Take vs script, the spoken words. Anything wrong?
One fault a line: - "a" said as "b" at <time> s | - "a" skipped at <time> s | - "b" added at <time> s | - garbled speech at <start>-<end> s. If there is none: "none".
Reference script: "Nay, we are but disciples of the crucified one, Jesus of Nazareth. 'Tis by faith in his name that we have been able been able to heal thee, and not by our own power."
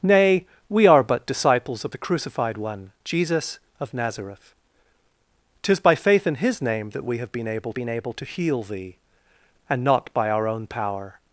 none